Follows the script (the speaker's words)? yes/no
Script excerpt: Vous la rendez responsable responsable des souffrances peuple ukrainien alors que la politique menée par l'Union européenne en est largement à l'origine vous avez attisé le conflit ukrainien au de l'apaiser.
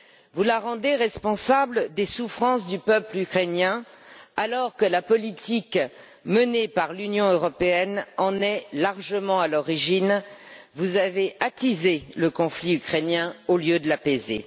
no